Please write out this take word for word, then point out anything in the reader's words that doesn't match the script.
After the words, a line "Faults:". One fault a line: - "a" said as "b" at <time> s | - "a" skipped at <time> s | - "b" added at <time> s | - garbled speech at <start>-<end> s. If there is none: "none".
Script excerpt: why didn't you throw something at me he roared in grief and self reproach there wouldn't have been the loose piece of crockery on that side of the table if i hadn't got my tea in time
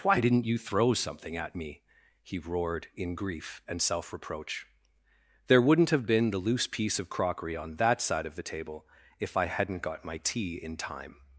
why didn't you throw something at me he roared in grief and self reproach there wouldn't have been the loose piece of crockery on that side of the table if i hadn't got my tea in time
Faults:
none